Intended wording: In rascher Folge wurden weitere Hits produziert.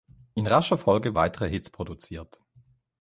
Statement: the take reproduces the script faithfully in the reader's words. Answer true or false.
false